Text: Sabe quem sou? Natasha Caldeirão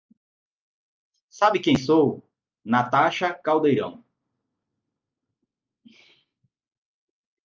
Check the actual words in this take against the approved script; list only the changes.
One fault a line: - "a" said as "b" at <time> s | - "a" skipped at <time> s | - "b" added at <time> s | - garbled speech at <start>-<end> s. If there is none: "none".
none